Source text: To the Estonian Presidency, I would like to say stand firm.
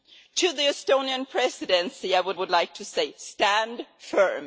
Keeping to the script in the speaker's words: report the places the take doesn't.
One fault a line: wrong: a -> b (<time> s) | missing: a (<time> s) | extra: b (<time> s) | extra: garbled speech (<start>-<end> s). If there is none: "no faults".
extra: would (2.3 s)